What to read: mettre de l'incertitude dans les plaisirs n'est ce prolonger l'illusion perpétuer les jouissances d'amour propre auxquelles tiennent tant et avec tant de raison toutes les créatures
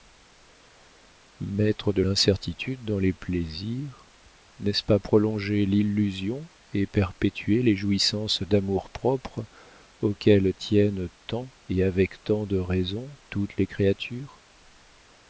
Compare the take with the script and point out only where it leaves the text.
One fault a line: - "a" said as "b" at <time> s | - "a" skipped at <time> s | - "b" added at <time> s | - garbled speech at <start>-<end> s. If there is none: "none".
- "pas" added at 4.8 s
- "et" added at 6.7 s